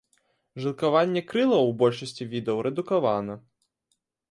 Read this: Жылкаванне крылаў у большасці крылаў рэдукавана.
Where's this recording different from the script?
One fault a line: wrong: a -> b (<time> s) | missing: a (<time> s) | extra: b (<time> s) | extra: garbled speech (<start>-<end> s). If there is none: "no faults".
wrong: крылаў -> відаў (2.3 s)